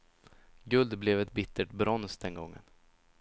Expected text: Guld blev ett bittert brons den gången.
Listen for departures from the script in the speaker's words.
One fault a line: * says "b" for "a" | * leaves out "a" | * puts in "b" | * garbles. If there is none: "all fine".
all fine